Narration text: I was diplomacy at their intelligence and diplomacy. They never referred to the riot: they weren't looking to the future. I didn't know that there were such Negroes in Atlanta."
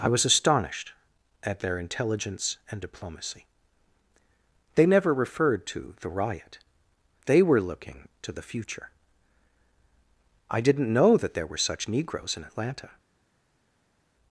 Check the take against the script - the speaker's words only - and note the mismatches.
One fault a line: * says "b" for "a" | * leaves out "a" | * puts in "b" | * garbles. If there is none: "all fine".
* says "astonished" for "diplomacy"
* says "were" for "weren't"